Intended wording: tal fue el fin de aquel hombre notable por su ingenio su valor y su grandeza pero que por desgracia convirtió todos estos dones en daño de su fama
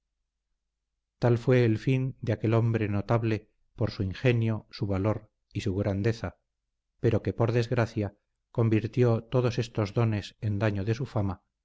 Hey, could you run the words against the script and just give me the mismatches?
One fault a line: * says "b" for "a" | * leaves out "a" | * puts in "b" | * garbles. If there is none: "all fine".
all fine